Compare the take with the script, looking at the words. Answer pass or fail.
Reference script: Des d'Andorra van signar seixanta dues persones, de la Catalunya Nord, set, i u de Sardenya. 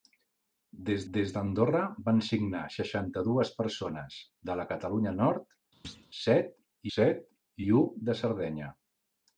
fail